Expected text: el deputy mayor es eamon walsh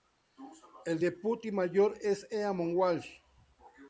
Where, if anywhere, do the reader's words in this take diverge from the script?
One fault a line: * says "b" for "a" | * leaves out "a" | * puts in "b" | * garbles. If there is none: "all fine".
all fine